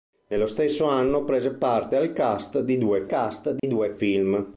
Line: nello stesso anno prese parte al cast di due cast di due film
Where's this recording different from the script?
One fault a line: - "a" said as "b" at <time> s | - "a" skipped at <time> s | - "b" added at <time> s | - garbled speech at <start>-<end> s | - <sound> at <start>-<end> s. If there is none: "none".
- dropout at 3.6-3.6 s